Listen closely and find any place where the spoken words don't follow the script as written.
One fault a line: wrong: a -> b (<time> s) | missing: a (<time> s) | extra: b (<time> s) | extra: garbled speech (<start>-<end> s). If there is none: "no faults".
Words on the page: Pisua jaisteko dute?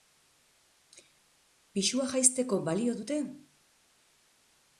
extra: balio (2.7 s)